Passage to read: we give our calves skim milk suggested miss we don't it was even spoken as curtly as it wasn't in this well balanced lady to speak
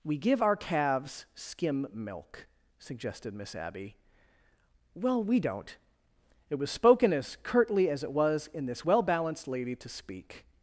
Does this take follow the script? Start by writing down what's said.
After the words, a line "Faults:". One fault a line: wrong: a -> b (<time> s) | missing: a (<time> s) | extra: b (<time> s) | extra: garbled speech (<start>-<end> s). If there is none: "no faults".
we give our calves skim milk suggested miss abby well we don't it was spoken as curtly as it was in this well balanced lady to speak
Faults:
extra: abby well (3.5 s)
missing: even (6.7 s)
wrong: wasn't -> was (8.1 s)